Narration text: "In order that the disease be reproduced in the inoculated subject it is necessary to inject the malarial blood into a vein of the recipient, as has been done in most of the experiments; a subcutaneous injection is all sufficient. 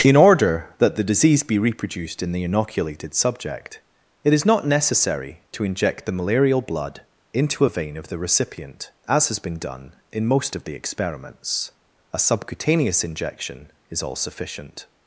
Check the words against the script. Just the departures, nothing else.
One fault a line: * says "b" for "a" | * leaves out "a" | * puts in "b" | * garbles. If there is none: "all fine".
* puts in "not"